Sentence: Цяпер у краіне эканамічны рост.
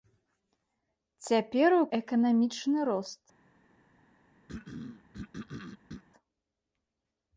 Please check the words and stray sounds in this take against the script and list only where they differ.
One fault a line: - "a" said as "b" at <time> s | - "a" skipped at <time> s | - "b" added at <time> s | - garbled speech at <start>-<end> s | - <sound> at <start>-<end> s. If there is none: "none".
- "краіне" skipped at 1.8 s
- throat clearing at 4.5-6.0 s